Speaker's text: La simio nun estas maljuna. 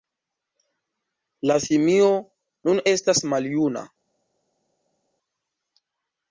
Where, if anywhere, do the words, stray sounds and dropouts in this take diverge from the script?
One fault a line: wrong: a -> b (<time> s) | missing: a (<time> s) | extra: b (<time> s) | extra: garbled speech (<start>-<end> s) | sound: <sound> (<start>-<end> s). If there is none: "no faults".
no faults